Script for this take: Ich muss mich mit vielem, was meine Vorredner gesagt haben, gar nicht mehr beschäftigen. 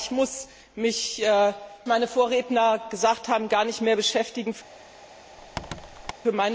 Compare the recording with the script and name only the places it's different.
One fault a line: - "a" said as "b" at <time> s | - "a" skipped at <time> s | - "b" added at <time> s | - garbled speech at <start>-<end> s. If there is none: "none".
- "mit vielem was" skipped at 1.2 s